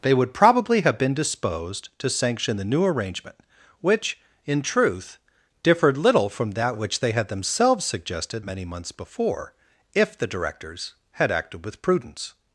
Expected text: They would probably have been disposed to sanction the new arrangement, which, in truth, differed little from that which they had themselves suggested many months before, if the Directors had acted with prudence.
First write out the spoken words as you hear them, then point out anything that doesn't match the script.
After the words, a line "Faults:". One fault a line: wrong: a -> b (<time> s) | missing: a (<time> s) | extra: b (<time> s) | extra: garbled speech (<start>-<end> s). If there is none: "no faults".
They would probably have been disposed to sanction the new arrangement, which, in truth, differed little from that which they had themselves suggested many months before, if the Directors had acted with prudence.
Faults:
no faults